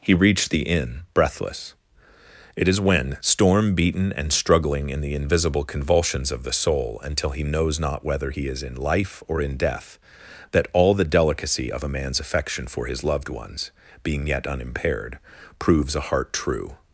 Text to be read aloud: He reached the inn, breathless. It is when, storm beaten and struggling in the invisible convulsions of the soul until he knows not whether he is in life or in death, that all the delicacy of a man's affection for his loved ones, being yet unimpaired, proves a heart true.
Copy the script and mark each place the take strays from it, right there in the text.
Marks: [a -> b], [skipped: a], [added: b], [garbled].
He reached the inn, breathless. It is when, storm beaten and struggling in the invisible convulsions of the soul until he knows not whether he is in life or in death, that all the delicacy of a man's affection for his loved ones, being yet unimpaired, proves a heart true.